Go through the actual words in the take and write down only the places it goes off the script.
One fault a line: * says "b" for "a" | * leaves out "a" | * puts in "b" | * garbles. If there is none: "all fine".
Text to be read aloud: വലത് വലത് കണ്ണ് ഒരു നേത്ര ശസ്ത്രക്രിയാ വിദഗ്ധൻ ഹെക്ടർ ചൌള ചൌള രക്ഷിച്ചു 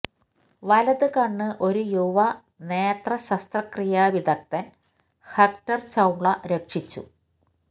* leaves out "വലത്"
* puts in "യുവ"
* leaves out "ചൌള"